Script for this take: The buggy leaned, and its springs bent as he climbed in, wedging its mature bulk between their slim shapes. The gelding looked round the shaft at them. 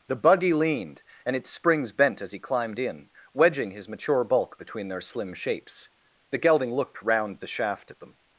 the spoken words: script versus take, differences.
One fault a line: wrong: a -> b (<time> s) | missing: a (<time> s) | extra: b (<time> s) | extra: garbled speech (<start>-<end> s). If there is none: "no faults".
wrong: its -> his (3.7 s)